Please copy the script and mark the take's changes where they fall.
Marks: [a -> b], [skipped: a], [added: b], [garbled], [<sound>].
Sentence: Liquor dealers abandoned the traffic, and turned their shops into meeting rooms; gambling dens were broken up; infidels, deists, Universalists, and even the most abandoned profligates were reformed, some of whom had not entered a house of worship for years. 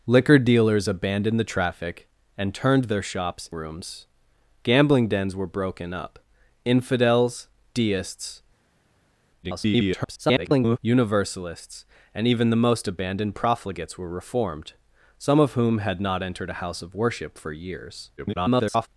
Liquor dealers abandoned the traffic, and turned their shops [skipped: into meeting] rooms; gambling dens were broken up; infidels, deists, [garbled] Universalists, and even the most abandoned profligates were reformed, some of whom had not entered a house of worship for years. [garbled]